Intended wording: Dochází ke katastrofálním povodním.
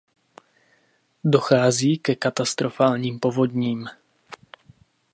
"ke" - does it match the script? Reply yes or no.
yes